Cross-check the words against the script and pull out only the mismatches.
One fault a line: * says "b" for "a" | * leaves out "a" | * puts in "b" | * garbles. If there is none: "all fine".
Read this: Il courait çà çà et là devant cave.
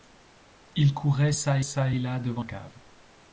all fine